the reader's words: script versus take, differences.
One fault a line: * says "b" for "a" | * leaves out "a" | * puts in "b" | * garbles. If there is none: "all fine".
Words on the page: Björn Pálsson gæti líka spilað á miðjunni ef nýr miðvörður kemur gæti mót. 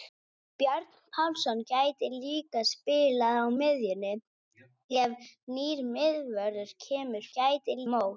all fine